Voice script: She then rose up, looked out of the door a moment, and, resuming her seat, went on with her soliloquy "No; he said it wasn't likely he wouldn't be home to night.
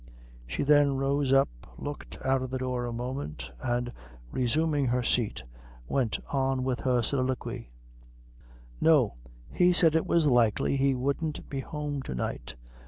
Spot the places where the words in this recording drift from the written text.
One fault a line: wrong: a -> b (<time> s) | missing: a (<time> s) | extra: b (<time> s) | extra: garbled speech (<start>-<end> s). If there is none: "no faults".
wrong: wasn't -> was (10.1 s)